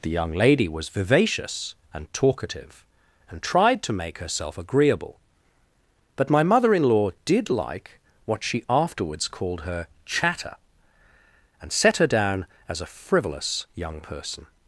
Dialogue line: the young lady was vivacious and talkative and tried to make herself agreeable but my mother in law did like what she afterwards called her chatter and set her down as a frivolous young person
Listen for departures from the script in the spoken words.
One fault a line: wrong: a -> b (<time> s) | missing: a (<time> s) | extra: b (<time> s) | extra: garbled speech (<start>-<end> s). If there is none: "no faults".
no faults